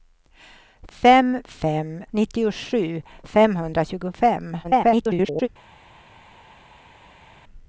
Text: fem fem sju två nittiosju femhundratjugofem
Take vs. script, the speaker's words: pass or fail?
fail